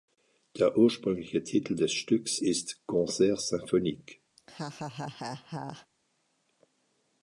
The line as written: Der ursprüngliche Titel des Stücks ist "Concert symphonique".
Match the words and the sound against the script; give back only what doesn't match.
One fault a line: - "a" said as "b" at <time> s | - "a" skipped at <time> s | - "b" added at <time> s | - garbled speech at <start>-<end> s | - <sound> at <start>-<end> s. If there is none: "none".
- laugh at 4.4-5.9 s